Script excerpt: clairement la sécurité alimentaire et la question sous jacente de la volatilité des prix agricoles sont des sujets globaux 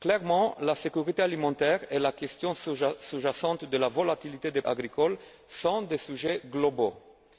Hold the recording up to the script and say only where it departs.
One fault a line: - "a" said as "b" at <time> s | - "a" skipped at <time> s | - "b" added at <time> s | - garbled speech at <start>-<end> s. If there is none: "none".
- "prix" skipped at 4.6 s